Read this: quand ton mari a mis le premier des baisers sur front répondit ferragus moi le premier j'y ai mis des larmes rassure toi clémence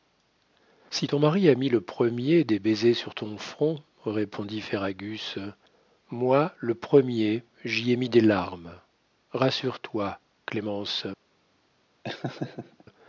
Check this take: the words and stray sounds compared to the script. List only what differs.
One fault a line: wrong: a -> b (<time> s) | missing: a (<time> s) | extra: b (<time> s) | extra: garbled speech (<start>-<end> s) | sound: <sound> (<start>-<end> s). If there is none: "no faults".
wrong: quand -> si (0.9 s)
extra: ton (3.1 s)
sound: laugh (12.0-12.8 s)